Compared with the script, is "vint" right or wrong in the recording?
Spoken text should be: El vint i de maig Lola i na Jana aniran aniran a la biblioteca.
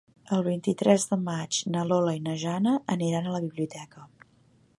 right